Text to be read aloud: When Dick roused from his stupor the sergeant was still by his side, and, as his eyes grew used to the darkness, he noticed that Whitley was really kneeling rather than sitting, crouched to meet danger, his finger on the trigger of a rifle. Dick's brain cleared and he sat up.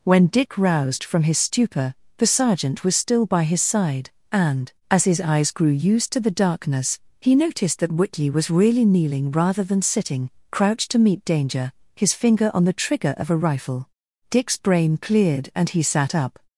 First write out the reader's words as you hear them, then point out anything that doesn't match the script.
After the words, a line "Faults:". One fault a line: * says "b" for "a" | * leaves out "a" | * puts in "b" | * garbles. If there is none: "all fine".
When Dick roused from his stupor the sergeant was still by his side, and, as his eyes grew used to the darkness, he noticed that Whitley was really kneeling rather than sitting, crouched to meet danger, his finger on the trigger of a rifle. Dick's brain cleared and he sat up.
Faults:
all fine